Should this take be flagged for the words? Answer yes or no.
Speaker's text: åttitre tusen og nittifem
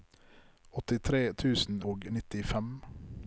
no